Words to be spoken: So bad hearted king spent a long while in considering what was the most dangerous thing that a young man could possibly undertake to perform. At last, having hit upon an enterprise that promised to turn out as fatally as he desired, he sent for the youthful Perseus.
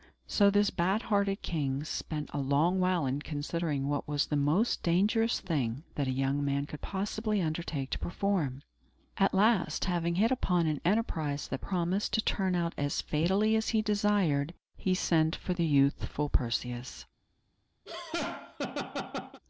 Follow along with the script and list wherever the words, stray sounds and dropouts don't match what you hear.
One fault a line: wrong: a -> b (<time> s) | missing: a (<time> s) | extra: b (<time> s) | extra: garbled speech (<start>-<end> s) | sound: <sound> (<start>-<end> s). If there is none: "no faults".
extra: this (0.5 s)
sound: laugh (17.9-19.4 s)